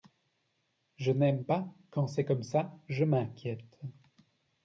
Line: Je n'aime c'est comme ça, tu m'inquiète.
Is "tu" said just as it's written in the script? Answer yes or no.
no